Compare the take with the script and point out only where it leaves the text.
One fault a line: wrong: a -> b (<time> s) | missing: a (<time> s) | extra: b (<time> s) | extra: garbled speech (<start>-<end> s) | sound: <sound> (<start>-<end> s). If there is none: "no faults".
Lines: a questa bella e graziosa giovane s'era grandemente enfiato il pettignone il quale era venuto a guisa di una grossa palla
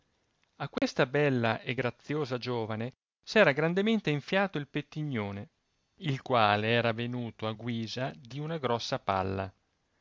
sound: dropout (0.8-0.8 s)